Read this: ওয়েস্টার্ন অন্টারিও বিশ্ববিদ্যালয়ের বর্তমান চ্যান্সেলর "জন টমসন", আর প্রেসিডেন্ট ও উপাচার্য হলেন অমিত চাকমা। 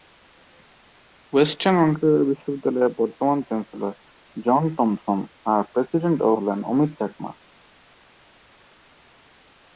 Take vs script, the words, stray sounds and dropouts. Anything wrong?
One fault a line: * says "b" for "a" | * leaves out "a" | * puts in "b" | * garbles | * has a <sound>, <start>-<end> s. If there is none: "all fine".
* leaves out "উপাচার্য"